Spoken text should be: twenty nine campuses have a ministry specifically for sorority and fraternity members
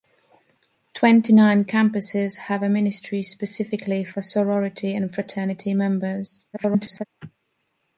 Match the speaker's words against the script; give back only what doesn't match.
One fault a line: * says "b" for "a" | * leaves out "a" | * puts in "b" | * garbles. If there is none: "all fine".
* garbles